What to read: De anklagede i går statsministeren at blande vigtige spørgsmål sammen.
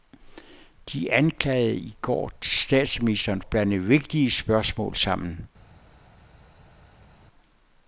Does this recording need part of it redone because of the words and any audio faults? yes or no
no